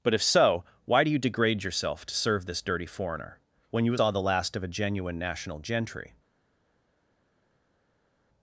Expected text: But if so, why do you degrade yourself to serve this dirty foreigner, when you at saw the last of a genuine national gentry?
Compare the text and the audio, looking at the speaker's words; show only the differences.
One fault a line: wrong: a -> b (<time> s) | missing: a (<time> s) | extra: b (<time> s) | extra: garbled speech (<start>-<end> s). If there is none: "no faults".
no faults